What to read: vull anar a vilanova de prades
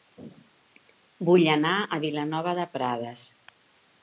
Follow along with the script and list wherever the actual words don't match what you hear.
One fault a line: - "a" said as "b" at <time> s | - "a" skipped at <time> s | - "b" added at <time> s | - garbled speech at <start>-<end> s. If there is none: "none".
none